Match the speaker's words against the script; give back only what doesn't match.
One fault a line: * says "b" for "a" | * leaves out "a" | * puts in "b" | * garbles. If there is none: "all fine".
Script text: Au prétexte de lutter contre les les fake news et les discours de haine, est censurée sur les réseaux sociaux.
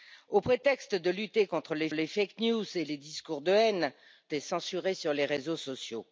all fine